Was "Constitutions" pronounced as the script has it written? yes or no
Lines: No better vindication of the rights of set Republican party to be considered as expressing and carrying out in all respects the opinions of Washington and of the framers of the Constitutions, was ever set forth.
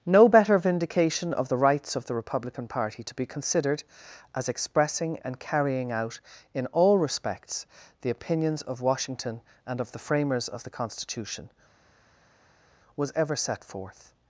no